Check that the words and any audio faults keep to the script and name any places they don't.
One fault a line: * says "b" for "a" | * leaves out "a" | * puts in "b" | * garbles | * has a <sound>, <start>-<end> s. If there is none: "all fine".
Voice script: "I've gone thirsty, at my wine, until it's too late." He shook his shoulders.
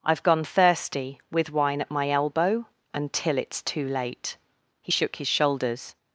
* puts in "with wine"
* says "elbow" for "wine"